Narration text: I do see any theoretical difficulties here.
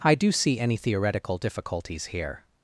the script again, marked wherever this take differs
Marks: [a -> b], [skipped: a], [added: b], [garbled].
I do see any theoretical difficulties here.